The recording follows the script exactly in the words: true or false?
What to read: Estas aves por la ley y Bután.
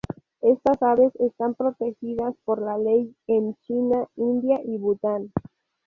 false